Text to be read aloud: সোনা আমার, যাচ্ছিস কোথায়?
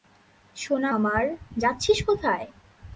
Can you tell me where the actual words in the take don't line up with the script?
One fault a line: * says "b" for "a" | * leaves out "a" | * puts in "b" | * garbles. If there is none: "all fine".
all fine